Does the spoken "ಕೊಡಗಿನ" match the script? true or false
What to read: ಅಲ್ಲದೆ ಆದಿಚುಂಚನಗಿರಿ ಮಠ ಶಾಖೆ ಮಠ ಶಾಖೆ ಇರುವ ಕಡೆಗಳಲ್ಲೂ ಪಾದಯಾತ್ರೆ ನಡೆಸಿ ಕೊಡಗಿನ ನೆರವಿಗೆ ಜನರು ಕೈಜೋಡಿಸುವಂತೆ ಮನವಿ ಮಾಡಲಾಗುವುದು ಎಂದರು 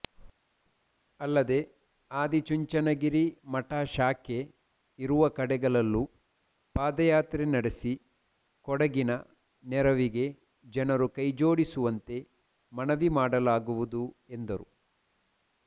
true